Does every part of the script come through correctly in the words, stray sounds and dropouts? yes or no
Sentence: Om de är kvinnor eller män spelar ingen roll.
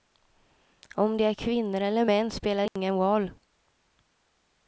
no